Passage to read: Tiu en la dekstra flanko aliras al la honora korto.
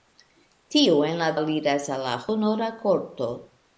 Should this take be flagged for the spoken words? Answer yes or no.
yes